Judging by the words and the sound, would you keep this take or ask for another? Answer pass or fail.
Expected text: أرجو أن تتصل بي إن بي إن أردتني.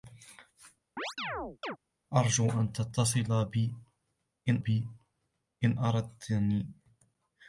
fail